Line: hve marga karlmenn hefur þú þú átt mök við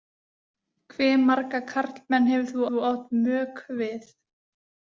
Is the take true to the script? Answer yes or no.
yes